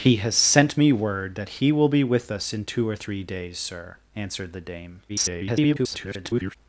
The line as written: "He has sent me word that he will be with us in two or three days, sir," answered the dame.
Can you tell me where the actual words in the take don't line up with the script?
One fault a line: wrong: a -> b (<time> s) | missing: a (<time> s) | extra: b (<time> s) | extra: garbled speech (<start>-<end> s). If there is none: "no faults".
extra: garbled speech (5.1-6.6 s)